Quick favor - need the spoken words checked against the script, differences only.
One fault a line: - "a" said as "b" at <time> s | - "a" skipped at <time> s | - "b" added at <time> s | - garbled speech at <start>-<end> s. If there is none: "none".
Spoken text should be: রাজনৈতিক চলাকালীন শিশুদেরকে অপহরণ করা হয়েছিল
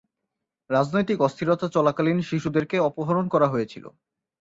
- "অস্থিরতা" added at 1.2 s